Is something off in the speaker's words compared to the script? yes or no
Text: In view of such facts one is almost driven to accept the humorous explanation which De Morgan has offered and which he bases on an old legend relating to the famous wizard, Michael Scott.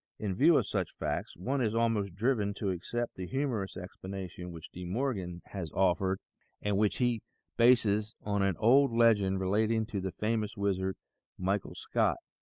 no